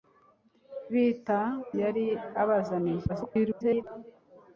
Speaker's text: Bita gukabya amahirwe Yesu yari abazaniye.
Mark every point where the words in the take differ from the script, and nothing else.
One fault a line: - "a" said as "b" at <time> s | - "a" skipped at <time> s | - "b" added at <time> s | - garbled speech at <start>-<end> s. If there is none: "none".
- "gukabya amahirwe Yesu" skipped at 1.4 s
- garbled speech at 3.1-3.8 s